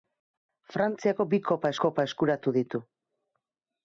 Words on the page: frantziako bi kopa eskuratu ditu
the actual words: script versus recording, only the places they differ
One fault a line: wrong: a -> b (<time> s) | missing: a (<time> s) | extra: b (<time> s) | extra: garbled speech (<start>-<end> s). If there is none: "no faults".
extra: kopa (1.8 s)